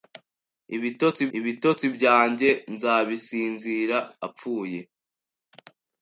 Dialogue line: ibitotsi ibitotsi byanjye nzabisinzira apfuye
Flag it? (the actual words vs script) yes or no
no